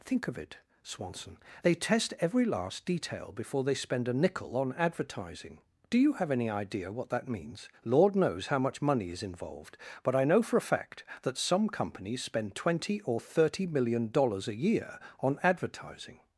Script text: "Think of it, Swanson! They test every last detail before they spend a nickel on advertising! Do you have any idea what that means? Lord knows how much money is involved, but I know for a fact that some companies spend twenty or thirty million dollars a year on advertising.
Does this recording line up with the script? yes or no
yes